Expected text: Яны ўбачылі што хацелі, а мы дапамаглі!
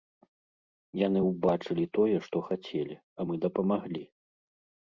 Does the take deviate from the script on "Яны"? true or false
false